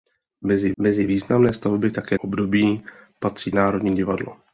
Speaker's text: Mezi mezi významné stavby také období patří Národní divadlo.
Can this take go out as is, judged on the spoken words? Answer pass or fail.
pass